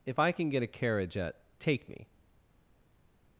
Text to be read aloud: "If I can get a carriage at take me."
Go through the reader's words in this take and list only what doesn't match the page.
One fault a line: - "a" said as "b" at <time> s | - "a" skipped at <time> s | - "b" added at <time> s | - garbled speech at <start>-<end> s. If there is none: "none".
none